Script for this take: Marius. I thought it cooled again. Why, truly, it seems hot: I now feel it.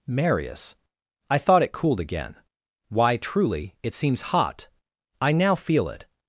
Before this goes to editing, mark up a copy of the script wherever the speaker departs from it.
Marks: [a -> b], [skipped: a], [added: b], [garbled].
Marius. I thought it cooled again. Why, truly, it seems hot: I now feel it.